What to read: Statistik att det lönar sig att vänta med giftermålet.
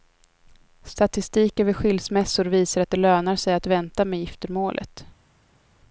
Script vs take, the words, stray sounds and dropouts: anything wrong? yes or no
yes